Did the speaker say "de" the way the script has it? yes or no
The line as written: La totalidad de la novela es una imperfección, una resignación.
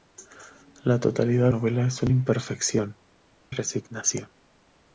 no